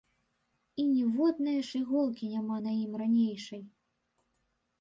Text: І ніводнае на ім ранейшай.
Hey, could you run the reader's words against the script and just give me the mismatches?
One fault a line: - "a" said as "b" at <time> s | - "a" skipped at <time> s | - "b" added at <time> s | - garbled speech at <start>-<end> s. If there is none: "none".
- "ж іголкі няма" added at 1.7 s